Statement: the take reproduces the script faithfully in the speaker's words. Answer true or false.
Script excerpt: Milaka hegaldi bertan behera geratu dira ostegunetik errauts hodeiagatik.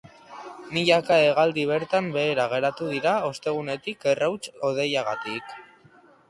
true